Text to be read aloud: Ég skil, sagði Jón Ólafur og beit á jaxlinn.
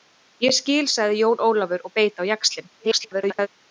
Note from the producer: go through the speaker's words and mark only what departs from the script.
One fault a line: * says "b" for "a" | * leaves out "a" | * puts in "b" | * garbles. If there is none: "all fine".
* garbles